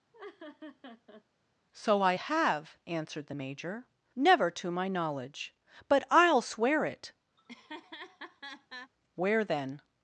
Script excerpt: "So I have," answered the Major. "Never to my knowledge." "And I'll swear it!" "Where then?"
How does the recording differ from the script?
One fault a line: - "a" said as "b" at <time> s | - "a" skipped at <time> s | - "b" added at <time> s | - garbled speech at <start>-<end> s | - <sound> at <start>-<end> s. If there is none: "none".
- laugh at 0.1-1.2 s
- "And" said as "But" at 5.9 s
- laugh at 7.4-8.9 s